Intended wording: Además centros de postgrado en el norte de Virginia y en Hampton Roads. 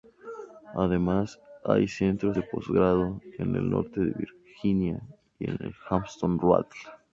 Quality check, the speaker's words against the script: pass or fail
fail